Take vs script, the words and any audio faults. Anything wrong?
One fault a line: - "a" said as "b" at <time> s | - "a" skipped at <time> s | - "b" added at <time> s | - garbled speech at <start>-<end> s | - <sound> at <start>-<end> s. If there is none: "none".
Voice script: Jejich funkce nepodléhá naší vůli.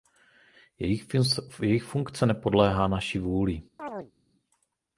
- chirp at 3.8-4.1 s